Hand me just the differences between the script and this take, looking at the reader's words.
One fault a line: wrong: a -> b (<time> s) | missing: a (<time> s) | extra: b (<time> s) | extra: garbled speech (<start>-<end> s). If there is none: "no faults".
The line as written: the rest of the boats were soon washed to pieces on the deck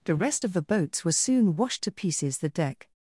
missing: on (2.4 s)